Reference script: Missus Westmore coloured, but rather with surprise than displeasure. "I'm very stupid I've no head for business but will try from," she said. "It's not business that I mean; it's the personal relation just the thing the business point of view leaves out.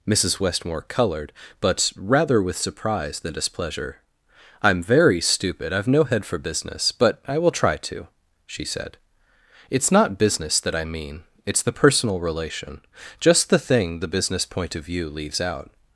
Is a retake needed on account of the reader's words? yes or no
yes